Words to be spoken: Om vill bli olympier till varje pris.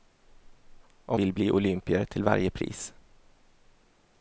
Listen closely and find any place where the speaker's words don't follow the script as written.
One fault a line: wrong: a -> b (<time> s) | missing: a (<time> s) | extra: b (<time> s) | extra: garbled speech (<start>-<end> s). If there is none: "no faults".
no faults